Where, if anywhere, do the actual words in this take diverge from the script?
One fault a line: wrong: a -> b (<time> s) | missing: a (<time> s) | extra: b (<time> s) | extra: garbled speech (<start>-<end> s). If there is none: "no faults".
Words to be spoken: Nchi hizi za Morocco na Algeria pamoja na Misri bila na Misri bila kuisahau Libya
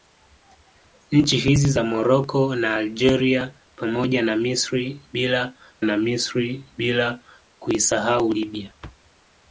no faults